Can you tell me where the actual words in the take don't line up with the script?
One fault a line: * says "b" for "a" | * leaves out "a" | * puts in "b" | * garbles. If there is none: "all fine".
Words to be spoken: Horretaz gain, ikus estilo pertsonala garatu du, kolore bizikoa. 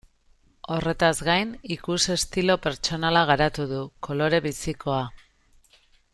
all fine